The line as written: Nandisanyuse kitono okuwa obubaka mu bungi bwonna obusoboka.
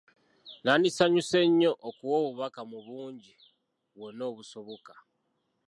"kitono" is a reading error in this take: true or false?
true